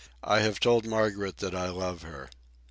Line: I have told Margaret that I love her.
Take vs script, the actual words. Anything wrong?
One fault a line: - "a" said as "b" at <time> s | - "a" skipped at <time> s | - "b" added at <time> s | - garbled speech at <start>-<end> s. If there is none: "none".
none